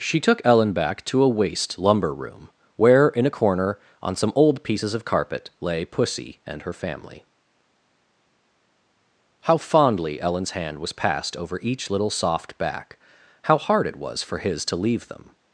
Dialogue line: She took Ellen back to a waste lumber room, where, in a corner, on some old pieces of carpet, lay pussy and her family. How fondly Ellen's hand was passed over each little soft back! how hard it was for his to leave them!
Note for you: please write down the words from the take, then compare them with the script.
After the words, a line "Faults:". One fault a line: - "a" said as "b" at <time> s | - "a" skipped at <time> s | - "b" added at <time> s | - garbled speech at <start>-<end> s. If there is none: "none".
She took Ellen back to a waste lumber room, where, in a corner, on some old pieces of carpet, lay pussy and her family. How fondly Ellen's hand was passed over each little soft back! how hard it was for his to leave them!
Faults:
none